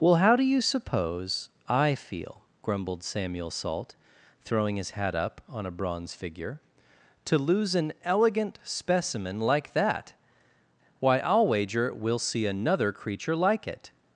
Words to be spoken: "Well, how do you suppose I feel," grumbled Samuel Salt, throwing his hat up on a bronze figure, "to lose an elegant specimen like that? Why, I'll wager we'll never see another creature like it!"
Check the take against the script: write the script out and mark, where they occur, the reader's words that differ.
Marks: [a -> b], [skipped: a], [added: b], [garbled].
"Well, how do you suppose I feel," grumbled Samuel Salt, throwing his hat up on a bronze figure, "to lose an elegant specimen like that? Why, I'll wager we'll [skipped: never] see another creature like it!"